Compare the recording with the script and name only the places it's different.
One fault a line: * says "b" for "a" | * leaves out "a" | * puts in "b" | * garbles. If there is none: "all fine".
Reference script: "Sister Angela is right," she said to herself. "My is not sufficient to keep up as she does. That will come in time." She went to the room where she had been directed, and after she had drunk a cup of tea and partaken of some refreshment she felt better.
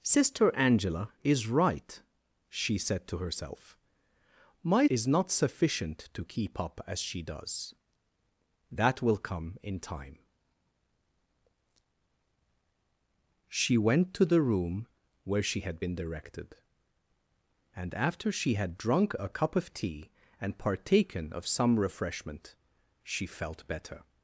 all fine